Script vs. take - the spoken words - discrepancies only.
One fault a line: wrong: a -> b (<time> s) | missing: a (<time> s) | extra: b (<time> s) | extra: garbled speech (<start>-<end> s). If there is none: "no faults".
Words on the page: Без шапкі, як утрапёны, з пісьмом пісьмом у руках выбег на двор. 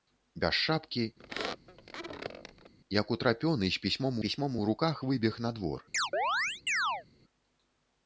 no faults